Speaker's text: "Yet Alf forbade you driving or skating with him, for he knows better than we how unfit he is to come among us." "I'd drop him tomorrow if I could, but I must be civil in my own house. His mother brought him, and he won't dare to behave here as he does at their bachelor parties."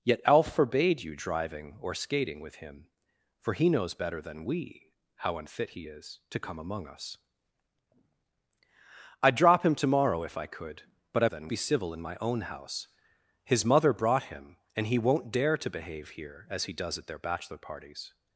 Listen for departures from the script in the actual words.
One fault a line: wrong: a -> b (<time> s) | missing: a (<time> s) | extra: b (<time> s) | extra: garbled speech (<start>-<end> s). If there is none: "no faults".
wrong: must -> than (11.3 s)